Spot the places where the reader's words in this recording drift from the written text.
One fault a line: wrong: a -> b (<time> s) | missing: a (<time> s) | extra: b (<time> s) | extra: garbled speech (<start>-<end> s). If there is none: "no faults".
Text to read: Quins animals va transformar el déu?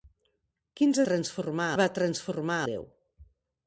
wrong: animals -> transformar (1.1 s)
missing: el (2.6 s)